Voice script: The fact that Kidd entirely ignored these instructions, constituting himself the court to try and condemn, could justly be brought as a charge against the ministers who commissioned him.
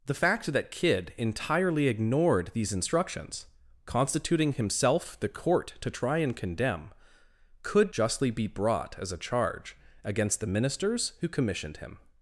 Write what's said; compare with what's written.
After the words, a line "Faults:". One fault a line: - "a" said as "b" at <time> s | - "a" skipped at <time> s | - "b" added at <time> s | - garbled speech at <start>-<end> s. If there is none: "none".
The fact that Kidd entirely ignored these instructions, constituting himself the court to try and condemn, could justly be brought as a charge against the ministers who commissioned him.
Faults:
none